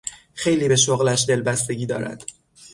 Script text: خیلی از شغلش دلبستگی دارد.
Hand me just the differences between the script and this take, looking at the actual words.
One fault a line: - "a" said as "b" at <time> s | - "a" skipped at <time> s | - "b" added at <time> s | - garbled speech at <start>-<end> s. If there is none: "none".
- "از" said as "به" at 0.7 s